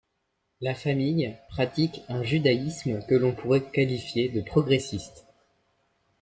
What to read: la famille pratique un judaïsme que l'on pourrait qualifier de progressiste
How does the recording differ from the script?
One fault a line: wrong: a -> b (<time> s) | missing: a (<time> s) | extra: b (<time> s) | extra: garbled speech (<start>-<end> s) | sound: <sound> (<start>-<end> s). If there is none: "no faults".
no faults